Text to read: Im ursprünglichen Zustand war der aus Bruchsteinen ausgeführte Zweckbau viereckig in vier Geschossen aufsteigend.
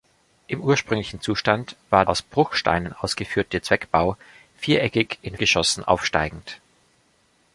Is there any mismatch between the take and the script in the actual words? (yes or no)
yes